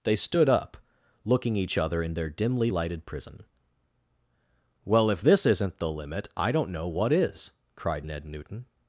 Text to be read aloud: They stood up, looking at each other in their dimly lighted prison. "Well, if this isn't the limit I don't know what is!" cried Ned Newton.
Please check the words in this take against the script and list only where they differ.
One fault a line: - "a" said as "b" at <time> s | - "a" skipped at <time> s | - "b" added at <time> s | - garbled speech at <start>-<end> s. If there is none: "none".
- "at" skipped at 1.6 s